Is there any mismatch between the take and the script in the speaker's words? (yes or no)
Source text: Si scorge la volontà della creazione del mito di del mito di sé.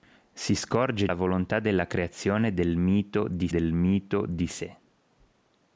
no